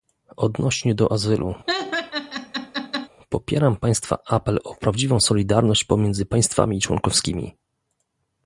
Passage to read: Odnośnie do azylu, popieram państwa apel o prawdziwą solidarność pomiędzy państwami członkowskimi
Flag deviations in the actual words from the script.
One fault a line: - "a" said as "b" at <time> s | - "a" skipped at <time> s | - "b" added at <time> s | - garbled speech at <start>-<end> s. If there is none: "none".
none